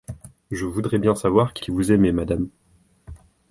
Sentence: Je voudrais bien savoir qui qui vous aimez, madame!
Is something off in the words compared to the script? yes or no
no